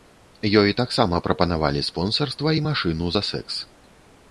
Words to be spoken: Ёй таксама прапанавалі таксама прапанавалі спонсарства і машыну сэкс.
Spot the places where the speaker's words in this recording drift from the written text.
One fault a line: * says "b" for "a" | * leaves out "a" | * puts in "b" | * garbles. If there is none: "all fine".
* leaves out "таксама прапанавалі"
* puts in "за"